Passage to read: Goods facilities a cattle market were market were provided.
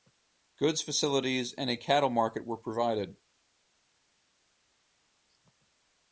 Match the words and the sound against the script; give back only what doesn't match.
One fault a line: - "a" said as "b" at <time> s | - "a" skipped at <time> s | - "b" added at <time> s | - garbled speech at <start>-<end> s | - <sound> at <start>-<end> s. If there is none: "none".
- "and" added at 1.5 s
- "market were" skipped at 2.6 s